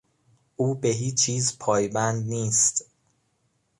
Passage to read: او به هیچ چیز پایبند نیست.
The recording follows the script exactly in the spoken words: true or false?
true